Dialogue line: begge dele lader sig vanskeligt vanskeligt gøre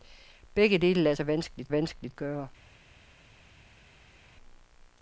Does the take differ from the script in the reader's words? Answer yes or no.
no